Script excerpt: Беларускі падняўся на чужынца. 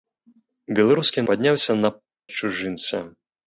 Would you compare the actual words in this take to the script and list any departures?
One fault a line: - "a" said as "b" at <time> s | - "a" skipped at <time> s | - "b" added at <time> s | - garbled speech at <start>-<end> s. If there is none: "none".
none